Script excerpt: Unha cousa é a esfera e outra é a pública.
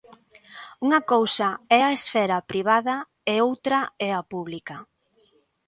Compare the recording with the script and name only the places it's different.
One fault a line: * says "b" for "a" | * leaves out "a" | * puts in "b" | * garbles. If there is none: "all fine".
* puts in "privada"